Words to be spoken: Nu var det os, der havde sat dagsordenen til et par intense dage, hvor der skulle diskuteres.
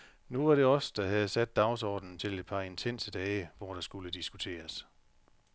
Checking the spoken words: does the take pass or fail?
pass